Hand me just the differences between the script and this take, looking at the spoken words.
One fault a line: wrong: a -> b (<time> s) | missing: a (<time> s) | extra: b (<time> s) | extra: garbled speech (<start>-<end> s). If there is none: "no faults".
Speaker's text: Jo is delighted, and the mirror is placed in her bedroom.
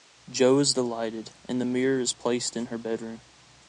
no faults